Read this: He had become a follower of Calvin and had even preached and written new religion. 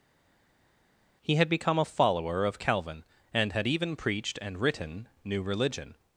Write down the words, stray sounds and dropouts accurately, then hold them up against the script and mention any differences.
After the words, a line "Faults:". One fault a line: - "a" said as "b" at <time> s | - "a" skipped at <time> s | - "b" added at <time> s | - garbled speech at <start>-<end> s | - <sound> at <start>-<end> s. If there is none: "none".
He had become a follower of Calvin and had even preached and written new religion.
Faults:
none